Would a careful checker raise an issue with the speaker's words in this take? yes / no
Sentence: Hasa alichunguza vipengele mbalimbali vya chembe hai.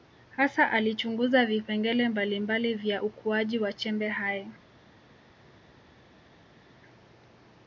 yes